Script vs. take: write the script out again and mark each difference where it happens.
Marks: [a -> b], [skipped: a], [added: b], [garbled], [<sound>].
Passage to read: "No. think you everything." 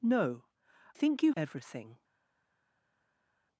"No. think you everything."